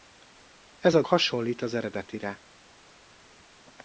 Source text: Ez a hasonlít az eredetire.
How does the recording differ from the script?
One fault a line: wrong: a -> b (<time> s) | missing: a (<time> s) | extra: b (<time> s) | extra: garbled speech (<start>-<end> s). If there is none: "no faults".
no faults